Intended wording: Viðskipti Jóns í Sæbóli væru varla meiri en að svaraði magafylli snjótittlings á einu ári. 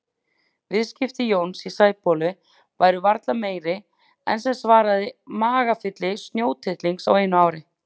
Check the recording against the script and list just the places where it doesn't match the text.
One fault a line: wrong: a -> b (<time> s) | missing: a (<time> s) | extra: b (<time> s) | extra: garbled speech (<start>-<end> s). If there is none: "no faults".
wrong: að -> sem (4.5 s)